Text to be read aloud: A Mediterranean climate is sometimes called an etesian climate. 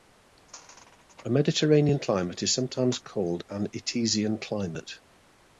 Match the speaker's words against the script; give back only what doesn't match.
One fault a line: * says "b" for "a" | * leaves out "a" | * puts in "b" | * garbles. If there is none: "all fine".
all fine